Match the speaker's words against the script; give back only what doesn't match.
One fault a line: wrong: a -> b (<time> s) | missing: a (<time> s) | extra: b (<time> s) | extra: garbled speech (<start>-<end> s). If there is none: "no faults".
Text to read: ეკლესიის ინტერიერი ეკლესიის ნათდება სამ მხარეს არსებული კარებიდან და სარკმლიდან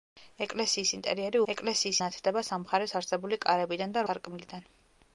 no faults